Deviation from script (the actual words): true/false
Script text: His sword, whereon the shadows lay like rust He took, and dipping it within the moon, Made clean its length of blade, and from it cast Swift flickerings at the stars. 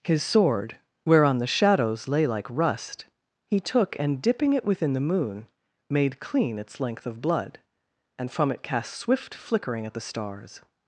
true